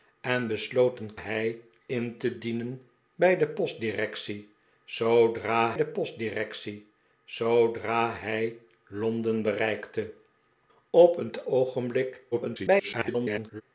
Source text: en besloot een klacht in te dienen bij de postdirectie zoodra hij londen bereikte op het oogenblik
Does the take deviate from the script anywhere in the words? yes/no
yes